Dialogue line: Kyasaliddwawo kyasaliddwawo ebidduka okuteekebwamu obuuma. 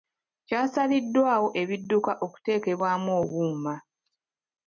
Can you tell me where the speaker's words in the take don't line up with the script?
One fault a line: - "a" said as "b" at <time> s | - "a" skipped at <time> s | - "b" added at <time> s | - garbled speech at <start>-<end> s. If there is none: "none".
- "kyasaliddwawo" skipped at 1.5 s